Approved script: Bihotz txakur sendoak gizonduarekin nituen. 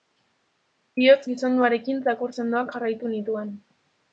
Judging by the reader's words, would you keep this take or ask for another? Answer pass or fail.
fail